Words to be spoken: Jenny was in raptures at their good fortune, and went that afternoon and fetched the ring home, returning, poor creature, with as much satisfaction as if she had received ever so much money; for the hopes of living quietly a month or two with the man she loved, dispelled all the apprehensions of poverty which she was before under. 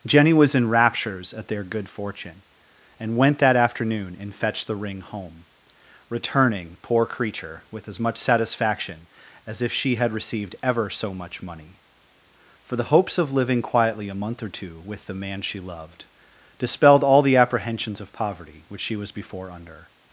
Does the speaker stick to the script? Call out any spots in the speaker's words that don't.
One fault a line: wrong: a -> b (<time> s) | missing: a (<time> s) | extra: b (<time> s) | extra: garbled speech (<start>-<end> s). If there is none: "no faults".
no faults